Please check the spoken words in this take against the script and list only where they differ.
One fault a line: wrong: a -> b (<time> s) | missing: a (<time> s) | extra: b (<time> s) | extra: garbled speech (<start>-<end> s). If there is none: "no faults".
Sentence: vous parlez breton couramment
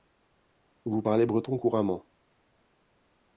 no faults